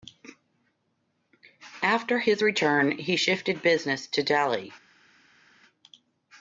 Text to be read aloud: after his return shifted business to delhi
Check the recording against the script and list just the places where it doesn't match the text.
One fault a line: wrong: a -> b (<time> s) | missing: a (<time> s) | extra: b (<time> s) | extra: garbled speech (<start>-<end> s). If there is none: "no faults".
extra: he (3.0 s)